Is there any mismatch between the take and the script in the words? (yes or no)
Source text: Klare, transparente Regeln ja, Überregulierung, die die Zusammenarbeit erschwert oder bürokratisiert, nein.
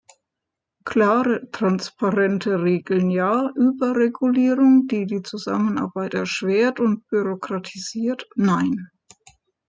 yes